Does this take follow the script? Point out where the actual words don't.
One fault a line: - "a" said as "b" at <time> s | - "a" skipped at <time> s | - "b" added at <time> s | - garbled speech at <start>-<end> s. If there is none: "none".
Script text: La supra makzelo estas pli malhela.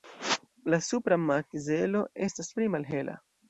none